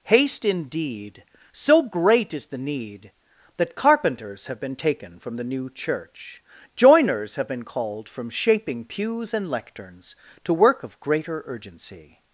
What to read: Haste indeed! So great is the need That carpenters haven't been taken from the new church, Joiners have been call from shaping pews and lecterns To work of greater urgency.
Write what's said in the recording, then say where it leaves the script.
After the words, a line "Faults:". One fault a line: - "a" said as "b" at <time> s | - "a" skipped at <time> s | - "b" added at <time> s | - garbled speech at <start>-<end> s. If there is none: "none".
Haste indeed! So great is the need That carpenters have been taken from the new church, Joiners have been called from shaping pews and lecterns To work of greater urgency.
Faults:
- "haven't" said as "have" at 4.5 s
- "call" said as "called" at 7.6 s